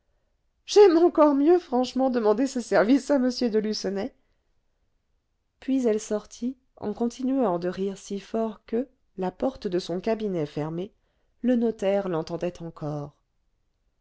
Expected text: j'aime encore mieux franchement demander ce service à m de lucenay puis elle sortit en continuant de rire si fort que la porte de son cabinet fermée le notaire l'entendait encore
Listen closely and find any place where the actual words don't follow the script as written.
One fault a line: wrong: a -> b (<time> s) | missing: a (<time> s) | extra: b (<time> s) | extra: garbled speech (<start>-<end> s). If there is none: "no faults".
no faults